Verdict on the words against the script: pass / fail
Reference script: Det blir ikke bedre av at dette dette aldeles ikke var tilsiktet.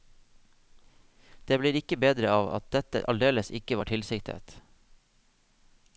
fail